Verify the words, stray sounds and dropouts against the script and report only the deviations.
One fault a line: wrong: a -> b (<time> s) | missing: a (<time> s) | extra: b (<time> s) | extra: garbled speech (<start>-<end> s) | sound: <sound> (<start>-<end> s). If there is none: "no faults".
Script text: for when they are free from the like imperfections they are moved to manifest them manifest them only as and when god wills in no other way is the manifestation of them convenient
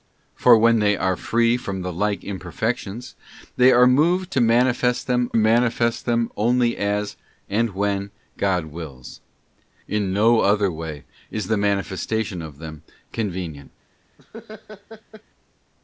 sound: laugh (14.2-15.2 s)